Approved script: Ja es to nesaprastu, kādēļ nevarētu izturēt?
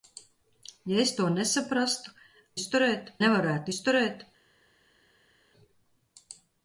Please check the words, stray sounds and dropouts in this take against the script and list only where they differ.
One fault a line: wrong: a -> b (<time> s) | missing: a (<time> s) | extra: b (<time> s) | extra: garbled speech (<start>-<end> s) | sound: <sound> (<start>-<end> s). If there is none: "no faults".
wrong: kādēļ -> izturēt (2.6 s)